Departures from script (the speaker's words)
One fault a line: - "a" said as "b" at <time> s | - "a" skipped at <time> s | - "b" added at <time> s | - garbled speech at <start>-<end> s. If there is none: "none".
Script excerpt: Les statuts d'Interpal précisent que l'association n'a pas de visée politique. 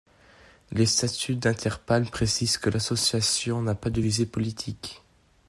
none